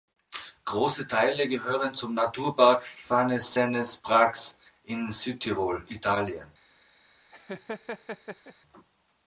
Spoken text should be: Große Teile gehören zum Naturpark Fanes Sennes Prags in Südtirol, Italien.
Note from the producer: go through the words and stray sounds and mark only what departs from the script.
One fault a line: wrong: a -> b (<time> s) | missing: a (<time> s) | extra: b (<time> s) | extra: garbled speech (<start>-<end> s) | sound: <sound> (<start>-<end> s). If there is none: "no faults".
sound: laugh (7.3-8.5 s)